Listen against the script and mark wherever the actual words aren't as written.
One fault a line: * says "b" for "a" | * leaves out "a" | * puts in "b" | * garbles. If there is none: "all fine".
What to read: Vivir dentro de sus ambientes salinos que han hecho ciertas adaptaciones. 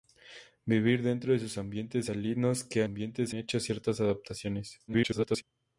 * says "ambientes" for "han"
* garbles